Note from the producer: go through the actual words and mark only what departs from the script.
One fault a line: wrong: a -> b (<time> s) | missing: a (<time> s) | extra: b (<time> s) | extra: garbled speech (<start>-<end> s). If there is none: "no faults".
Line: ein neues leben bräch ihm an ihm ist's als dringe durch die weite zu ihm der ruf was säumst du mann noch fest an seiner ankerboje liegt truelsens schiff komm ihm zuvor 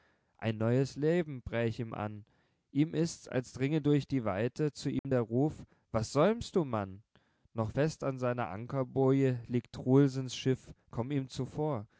no faults